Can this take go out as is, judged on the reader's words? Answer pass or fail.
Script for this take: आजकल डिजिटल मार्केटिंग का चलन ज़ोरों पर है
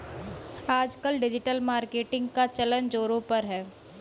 pass